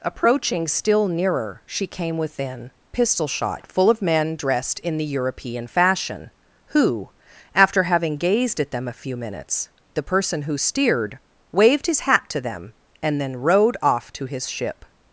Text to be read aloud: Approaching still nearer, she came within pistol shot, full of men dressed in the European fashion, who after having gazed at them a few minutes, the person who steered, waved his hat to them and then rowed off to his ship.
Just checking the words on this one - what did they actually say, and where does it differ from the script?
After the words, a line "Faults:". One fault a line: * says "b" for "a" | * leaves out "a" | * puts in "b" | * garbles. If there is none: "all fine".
Approaching still nearer, she came within pistol shot, full of men dressed in the European fashion, who after having gazed at them a few minutes, the person who steered, waved his hat to them and then rowed off to his ship.
Faults:
all fine